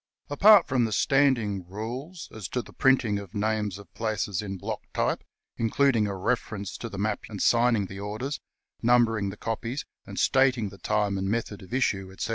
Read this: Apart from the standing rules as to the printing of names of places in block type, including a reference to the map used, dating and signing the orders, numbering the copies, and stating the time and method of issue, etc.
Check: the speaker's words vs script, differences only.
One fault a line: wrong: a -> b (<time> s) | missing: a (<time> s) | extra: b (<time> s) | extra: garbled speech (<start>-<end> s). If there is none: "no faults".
missing: used dating (7.3 s)